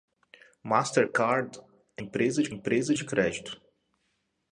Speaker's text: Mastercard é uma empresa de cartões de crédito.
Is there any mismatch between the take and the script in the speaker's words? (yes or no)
yes